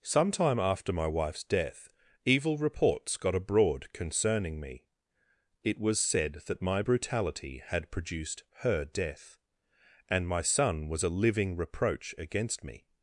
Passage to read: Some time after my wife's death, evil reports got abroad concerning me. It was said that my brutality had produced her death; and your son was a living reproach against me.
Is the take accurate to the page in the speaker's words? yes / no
no